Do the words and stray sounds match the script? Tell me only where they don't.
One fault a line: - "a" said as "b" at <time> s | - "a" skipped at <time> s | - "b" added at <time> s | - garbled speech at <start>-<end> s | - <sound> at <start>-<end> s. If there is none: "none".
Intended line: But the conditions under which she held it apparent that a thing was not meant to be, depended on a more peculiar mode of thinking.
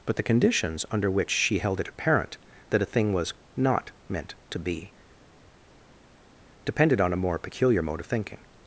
none